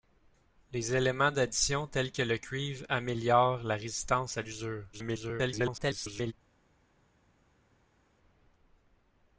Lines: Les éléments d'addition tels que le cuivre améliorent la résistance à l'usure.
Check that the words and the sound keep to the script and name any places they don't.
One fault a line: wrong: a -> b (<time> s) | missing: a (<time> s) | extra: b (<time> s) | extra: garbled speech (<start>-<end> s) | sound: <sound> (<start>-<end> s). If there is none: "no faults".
extra: garbled speech (4.9-6.3 s)